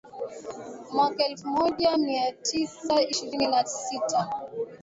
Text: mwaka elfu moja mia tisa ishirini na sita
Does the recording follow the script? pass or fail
pass